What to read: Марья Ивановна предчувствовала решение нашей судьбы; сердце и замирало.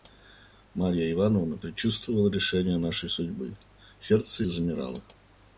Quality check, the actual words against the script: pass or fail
pass